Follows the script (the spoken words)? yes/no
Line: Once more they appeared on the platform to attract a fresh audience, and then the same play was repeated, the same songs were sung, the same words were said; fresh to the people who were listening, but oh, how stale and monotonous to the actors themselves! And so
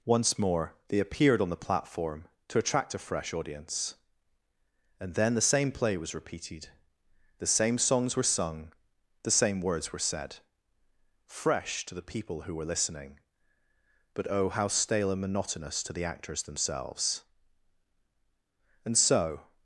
yes